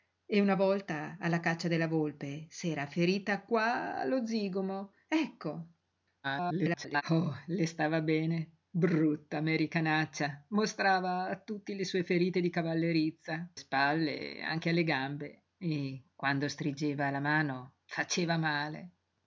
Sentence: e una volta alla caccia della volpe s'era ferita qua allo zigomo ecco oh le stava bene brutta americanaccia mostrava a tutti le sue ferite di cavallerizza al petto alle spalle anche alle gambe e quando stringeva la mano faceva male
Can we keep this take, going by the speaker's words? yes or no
no